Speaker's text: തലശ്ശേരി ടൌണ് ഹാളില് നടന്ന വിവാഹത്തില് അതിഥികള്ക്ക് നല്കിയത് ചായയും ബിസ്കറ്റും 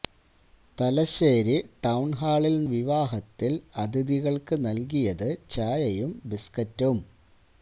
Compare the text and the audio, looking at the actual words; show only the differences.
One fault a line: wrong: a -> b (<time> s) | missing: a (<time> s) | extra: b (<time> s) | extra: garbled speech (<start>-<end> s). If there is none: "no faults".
missing: നടന്ന (2.7 s)